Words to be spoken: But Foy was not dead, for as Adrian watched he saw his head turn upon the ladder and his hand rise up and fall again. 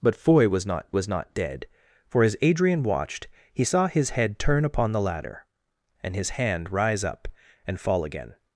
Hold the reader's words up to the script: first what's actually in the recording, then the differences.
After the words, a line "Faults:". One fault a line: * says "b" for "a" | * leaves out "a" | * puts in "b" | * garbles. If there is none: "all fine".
But Foy was not was not dead, for as Adrian watched he saw his head turn upon the ladder and his hand rise up and fall again.
Faults:
* puts in "was not"